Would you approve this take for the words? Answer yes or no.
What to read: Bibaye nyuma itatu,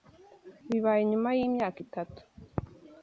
no